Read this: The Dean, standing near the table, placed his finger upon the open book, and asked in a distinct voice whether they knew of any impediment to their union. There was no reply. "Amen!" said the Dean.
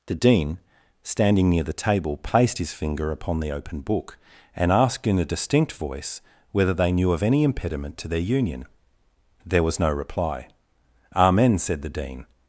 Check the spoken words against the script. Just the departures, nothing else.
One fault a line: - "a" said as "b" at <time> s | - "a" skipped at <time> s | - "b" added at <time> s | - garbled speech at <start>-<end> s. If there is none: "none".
none